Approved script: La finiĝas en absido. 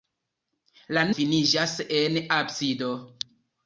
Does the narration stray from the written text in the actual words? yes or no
no